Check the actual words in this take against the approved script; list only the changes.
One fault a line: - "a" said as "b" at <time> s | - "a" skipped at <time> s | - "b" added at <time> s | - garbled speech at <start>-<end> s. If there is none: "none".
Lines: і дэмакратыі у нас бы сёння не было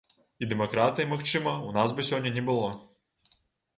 - "магчыма" added at 1.1 s